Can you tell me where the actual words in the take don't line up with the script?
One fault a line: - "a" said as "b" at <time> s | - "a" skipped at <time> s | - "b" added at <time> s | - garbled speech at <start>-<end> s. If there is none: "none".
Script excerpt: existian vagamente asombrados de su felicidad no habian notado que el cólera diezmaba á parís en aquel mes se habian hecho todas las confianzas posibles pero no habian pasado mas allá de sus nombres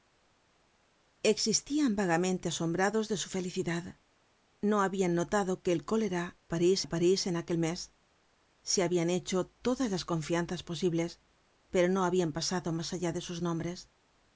- "diezmaba" said as "parís" at 6.5 s